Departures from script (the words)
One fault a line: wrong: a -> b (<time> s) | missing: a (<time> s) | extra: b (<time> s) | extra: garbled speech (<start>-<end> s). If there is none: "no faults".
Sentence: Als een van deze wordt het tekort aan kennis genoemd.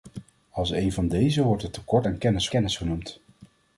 extra: kennis (2.5 s)